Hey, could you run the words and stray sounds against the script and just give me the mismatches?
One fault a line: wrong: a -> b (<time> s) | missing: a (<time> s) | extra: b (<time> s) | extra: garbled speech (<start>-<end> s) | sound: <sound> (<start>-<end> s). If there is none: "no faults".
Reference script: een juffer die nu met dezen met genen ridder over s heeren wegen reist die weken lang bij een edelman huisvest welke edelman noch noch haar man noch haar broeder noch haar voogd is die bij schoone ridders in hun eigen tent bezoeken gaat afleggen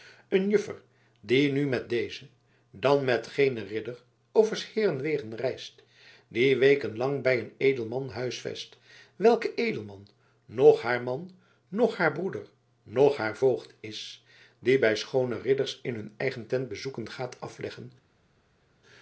extra: dan (2.7 s)
missing: noch (10.8 s)